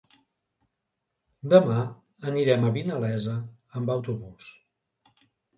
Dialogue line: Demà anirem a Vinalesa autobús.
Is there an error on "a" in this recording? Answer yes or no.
no